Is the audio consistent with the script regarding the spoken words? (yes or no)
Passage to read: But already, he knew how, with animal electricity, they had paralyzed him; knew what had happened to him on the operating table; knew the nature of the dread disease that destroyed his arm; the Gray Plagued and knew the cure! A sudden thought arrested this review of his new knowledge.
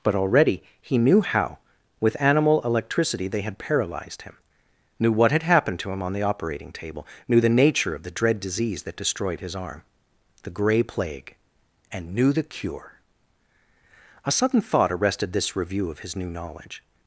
no